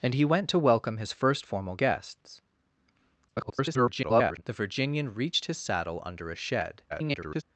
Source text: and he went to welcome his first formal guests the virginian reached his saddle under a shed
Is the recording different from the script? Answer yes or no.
yes